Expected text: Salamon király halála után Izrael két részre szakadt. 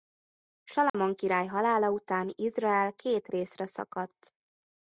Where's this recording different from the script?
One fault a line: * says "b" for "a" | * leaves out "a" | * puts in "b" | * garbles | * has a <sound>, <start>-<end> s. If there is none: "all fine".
* has a dropout, 0.9-0.9 s